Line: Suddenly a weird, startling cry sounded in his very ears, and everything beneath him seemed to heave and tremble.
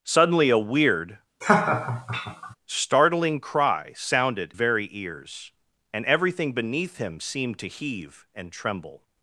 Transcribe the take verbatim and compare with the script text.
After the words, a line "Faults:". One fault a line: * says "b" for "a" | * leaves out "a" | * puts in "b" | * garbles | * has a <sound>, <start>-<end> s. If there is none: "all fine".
Suddenly a weird, startling cry sounded very ears, and everything beneath him seemed to heave and tremble.
Faults:
* has a laugh, 1.4-2.6 s
* leaves out "in his"